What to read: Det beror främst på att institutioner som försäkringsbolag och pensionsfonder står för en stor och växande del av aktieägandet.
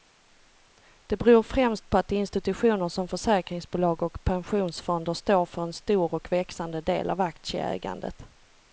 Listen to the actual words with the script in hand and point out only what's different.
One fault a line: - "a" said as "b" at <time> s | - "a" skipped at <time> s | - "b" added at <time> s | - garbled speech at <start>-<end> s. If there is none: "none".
none